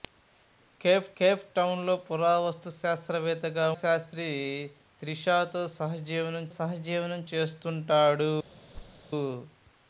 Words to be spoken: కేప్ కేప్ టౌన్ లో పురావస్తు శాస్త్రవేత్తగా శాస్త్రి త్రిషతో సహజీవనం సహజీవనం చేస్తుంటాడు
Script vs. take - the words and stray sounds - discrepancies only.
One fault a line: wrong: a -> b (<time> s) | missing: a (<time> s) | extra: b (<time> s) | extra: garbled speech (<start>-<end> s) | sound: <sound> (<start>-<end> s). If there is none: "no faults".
sound: thud (8.7-9.1 s)